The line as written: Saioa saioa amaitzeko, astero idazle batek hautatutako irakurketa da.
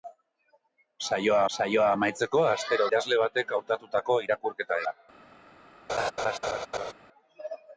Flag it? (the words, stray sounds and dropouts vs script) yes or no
yes